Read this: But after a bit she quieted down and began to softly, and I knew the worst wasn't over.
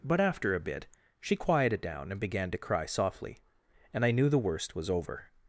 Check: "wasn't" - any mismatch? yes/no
yes